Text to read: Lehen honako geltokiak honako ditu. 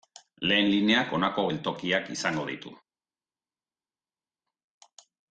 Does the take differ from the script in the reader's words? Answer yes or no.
yes